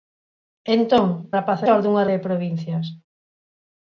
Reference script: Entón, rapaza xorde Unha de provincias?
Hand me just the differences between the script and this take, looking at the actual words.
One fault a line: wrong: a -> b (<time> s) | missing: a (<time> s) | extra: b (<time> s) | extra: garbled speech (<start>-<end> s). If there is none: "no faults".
no faults